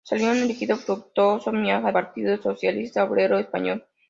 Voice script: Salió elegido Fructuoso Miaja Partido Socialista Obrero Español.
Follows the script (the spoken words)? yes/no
yes